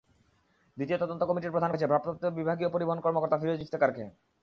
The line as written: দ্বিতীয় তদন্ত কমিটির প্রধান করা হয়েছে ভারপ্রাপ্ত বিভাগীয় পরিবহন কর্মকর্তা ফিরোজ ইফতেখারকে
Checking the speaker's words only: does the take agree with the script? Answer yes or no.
no